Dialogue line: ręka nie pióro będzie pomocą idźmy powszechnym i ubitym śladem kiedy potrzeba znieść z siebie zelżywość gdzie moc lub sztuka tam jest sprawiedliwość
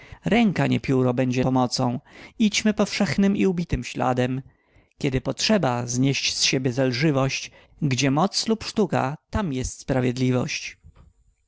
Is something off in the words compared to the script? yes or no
no